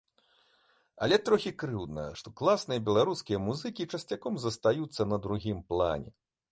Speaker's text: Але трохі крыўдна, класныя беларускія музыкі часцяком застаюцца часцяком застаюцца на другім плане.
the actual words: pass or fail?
fail